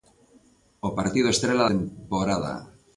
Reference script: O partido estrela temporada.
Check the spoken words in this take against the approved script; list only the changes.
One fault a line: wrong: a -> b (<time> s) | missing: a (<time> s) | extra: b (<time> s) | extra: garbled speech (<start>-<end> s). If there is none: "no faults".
no faults